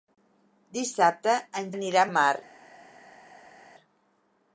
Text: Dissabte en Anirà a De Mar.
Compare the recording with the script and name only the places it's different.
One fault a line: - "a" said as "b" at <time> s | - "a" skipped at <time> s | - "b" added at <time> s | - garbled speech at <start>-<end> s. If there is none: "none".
none